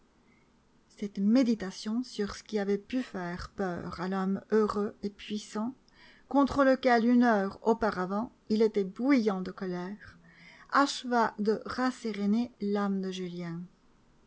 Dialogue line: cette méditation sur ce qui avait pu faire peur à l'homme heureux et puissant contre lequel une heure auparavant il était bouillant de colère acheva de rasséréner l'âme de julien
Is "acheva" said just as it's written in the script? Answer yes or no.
yes